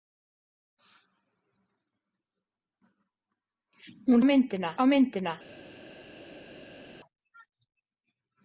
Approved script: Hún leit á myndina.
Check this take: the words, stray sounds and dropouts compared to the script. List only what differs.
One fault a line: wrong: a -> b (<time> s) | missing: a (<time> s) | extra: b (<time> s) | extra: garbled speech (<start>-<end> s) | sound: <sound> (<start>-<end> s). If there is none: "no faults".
wrong: leit -> myndina (4.3 s)